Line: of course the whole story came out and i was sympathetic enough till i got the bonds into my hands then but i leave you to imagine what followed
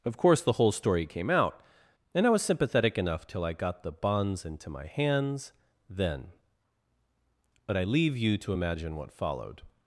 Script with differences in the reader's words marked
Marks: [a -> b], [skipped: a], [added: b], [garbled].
of course the whole story came out and i was sympathetic enough till i got the bonds into my hands then but i leave you to imagine what followed